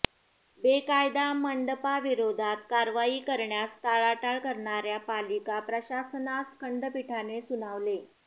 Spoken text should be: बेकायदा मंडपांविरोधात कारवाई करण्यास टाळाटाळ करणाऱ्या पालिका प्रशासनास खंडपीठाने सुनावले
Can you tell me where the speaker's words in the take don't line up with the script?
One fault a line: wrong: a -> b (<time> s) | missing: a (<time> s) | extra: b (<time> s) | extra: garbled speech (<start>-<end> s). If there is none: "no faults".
no faults